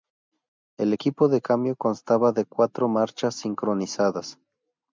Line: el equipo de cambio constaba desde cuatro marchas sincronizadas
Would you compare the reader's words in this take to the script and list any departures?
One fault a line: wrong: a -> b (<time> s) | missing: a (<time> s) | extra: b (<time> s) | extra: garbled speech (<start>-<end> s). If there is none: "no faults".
wrong: desde -> de (2.3 s)